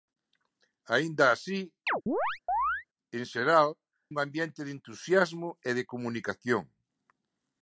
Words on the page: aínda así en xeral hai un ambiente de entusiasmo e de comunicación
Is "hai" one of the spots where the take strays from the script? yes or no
yes